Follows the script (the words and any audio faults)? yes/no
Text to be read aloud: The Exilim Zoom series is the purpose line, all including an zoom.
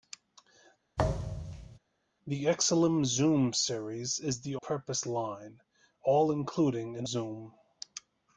no